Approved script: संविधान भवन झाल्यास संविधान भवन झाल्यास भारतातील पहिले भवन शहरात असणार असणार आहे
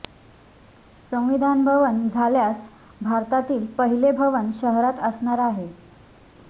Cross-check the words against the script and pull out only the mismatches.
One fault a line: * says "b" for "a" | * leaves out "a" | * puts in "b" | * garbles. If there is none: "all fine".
* leaves out "संविधान भवन झाल्यास"
* leaves out "असणार"